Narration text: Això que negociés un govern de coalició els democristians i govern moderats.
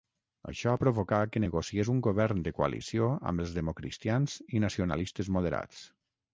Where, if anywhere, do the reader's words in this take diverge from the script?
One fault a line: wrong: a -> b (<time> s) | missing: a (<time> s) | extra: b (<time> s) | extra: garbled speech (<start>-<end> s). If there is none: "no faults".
extra: provocà (0.8 s)
extra: amb (3.3 s)
wrong: govern -> nacionalistes (4.7 s)